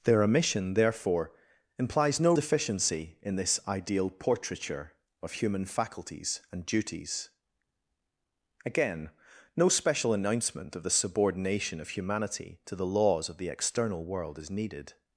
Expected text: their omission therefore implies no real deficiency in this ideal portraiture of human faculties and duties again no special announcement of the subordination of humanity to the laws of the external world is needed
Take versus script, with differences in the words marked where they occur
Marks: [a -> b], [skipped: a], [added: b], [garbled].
their omission therefore implies no [skipped: real] deficiency in this ideal portraiture of human faculties and duties again no special announcement of the subordination of humanity to the laws of the external world is needed